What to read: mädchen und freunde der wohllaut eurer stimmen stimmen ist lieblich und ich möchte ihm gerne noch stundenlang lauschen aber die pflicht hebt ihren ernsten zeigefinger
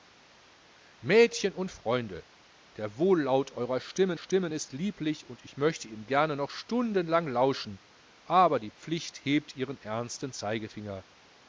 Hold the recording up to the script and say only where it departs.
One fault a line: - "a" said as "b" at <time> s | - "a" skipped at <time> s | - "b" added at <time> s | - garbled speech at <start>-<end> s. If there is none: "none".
none